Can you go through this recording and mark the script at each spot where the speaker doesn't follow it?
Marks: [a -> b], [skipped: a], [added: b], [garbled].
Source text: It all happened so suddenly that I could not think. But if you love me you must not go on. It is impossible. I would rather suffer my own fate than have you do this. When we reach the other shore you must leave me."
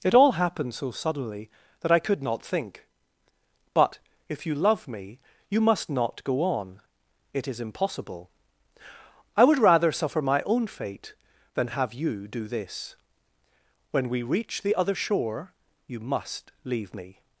It all happened so suddenly that I could not think. But if you love me you must not go on. It is impossible. I would rather suffer my own fate than have you do this. When we reach the other shore you must leave me."